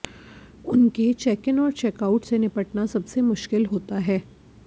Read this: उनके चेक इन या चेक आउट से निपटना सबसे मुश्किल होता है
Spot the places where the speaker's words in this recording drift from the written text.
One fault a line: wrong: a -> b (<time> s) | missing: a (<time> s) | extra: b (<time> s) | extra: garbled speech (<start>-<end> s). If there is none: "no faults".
wrong: या -> और (1.6 s)